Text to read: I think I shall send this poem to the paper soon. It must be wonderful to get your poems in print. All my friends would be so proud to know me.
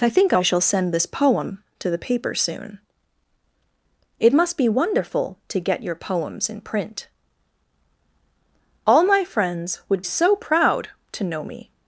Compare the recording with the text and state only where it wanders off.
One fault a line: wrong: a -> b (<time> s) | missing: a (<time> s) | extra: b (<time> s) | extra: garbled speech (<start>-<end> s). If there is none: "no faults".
missing: be (10.0 s)